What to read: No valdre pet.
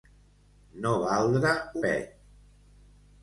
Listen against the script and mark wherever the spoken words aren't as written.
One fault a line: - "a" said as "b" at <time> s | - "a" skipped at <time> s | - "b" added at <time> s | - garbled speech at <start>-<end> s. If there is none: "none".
none